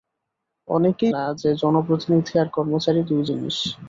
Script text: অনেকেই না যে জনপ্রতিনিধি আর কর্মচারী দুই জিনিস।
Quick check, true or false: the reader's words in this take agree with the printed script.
true